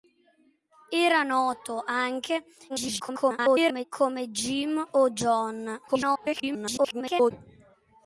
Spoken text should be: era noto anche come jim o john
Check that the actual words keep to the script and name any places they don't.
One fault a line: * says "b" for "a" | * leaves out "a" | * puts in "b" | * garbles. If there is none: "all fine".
* garbles
* garbles